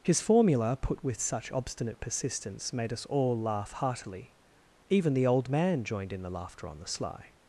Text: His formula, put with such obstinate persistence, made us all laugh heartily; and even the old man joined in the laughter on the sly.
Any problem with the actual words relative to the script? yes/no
yes